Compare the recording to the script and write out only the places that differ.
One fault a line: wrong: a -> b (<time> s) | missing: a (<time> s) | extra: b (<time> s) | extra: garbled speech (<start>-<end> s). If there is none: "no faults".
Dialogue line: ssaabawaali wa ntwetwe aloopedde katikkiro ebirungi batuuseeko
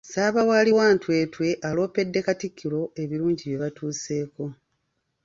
extra: bye (3.5 s)